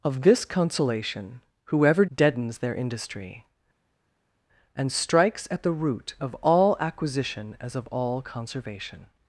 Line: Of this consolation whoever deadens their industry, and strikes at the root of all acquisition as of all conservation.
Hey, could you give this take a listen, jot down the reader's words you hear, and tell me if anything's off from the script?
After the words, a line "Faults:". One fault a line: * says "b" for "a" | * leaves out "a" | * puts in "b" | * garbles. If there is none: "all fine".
Of this consolation whoever deadens their industry, and strikes at the root of all acquisition as of all conservation.
Faults:
all fine